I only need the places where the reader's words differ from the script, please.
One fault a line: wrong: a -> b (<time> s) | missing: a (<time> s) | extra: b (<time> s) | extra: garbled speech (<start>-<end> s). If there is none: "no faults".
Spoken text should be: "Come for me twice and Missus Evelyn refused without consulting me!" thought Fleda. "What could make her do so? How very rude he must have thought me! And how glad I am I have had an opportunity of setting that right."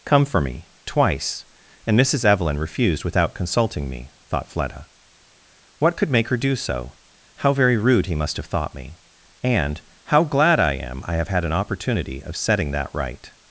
no faults